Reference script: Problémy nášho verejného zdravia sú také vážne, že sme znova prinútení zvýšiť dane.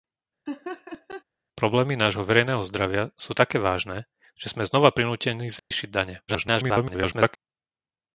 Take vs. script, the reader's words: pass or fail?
fail